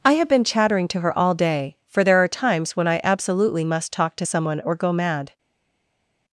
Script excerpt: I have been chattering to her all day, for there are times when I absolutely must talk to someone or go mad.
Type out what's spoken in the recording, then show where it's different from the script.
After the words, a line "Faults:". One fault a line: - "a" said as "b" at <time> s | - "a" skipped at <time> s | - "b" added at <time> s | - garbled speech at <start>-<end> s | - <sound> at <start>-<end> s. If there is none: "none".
I have been chattering to her all day, for there are times when I absolutely must talk to someone or go mad.
Faults:
none